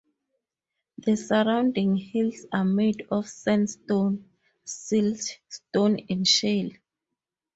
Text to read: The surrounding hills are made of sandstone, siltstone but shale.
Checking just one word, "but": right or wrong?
wrong